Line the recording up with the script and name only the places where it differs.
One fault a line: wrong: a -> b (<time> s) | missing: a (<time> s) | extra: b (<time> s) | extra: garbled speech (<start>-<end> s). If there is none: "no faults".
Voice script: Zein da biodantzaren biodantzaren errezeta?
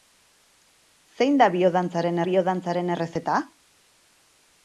no faults